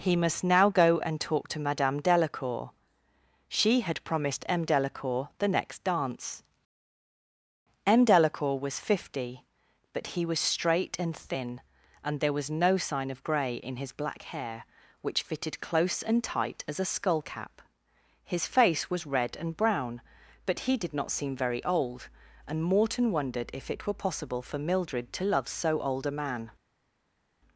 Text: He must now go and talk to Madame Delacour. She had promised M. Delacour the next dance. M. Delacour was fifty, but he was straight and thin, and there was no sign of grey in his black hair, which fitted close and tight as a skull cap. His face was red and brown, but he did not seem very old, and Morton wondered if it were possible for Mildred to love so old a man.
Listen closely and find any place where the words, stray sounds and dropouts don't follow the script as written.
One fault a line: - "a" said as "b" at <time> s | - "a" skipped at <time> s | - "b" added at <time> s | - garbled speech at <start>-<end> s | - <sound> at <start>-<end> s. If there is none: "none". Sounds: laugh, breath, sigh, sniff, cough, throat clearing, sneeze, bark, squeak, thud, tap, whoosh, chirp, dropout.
none